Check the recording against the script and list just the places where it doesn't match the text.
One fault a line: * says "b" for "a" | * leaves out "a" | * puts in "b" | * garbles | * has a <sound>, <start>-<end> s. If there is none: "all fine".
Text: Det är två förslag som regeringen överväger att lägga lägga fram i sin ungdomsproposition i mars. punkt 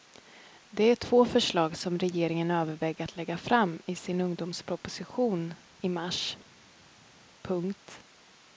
* leaves out "lägga"